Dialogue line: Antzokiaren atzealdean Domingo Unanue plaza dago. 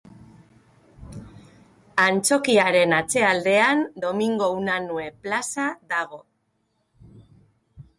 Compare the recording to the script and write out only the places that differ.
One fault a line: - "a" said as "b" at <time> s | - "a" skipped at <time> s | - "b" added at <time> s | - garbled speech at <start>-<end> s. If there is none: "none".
none